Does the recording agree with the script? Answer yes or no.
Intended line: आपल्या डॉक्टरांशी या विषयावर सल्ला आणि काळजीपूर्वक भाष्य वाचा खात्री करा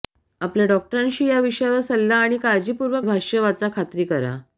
yes